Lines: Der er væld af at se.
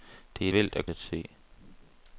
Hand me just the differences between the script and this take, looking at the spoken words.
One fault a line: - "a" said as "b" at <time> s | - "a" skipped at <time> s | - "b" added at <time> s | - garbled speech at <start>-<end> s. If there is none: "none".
none